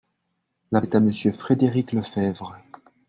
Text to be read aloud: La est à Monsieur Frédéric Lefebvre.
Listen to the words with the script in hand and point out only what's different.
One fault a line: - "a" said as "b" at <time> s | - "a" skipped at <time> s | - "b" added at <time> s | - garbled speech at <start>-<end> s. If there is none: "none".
none